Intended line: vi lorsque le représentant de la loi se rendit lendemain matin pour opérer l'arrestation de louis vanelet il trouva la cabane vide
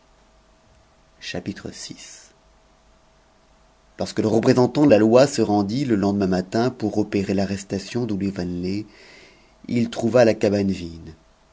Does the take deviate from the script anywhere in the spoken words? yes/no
yes